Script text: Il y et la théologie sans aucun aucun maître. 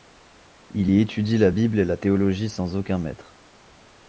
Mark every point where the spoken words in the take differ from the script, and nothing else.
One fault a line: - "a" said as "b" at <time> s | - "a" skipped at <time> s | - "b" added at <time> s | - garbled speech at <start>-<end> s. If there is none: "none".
- "étudie la Bible" added at 1.0 s
- "aucun" skipped at 3.0 s